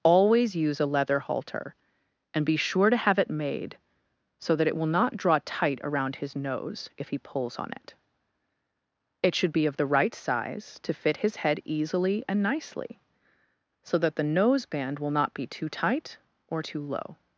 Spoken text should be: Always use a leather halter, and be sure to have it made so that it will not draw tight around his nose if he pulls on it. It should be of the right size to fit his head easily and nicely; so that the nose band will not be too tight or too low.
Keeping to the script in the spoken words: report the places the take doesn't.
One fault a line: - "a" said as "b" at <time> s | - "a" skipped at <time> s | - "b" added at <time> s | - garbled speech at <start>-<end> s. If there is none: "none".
none